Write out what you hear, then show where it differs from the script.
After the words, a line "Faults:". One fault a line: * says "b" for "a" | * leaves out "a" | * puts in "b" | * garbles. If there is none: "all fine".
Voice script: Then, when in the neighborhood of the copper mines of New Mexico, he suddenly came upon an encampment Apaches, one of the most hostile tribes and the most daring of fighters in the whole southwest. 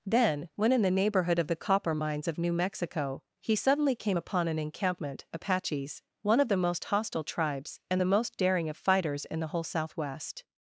Then, when in the neighborhood of the copper mines of New Mexico, he suddenly came upon an encampment Apaches, one of the most hostile tribes and the most daring of fighters in the whole southwest.
Faults:
all fine